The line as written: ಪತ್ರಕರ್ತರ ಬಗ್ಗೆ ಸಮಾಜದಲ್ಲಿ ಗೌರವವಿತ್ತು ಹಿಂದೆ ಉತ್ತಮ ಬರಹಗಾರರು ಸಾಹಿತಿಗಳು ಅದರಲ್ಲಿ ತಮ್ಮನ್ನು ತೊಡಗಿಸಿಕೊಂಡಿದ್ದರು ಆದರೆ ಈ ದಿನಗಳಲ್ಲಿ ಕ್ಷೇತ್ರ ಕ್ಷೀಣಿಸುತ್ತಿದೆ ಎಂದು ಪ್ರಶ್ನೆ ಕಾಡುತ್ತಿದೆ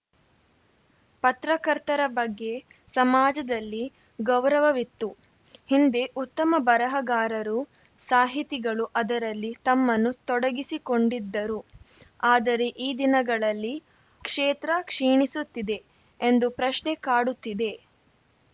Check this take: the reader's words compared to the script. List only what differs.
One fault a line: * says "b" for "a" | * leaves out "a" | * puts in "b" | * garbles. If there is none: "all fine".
all fine